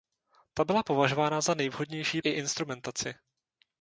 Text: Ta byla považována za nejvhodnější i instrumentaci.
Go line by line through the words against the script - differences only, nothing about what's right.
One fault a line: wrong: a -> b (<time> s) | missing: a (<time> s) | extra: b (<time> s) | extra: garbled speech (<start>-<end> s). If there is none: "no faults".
no faults